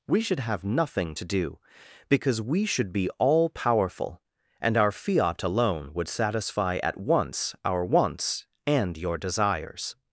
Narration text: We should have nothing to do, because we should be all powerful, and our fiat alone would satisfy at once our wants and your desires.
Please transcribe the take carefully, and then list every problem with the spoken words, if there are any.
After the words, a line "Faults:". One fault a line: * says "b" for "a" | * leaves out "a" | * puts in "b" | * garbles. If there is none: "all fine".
We should have nothing to do, because we should be all powerful, and our fiat alone would satisfy at once our wants and your desires.
Faults:
all fine